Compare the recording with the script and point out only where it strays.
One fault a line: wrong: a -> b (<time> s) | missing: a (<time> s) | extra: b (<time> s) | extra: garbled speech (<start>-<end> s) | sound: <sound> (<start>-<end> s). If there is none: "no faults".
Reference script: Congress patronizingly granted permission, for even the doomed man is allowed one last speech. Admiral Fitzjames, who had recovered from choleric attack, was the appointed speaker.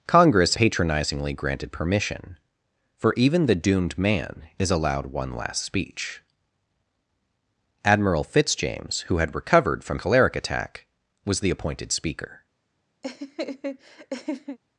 sound: laugh (13.0-14.6 s)